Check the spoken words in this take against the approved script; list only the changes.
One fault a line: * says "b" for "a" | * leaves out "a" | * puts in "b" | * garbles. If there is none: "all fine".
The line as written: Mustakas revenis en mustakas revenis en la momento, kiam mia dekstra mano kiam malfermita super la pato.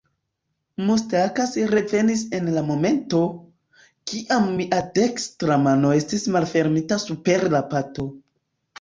* leaves out "mustakas revenis en"
* says "estis" for "kiam"